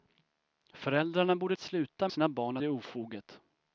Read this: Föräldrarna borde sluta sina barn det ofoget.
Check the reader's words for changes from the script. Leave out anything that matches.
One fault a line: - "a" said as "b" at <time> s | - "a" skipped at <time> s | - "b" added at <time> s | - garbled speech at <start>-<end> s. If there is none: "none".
none